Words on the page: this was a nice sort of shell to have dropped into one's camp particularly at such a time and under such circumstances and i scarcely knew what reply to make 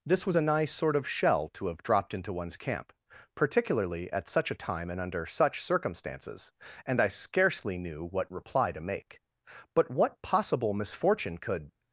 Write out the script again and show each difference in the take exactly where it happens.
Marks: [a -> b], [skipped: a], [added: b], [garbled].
this was a nice sort of shell to have dropped into one's camp particularly at such a time and under such circumstances and i scarcely knew what reply to make [added: but what possible misfortune could]